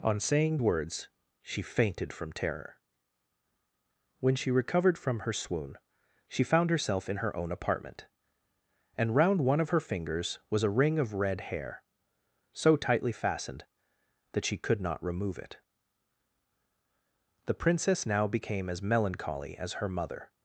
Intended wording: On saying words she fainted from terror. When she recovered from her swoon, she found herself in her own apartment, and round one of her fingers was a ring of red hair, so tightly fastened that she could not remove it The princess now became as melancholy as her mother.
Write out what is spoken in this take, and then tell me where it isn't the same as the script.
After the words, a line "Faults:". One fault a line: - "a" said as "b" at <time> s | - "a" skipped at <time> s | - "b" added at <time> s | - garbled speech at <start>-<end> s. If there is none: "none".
On saying words she fainted from terror. When she recovered from her swoon, she found herself in her own apartment, and round one of her fingers was a ring of red hair, so tightly fastened that she could not remove it The princess now became as melancholy as her mother.
Faults:
none